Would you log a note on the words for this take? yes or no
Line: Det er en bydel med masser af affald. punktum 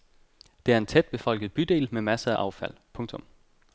yes